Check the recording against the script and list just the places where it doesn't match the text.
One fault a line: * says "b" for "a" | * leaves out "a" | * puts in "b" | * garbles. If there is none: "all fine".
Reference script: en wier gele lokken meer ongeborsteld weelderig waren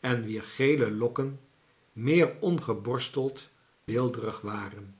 all fine